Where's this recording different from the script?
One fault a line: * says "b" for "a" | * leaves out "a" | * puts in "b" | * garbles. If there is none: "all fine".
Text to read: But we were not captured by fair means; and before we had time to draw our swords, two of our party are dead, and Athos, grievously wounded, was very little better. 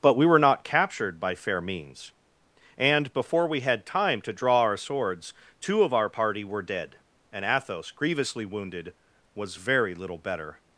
* says "were" for "are"